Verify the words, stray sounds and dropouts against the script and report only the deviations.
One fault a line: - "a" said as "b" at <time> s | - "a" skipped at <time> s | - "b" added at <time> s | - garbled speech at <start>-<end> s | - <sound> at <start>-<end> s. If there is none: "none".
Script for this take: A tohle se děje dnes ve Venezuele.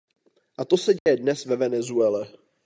- "tohle" said as "to" at 0.7 s
- dropout at 1.0-1.1 s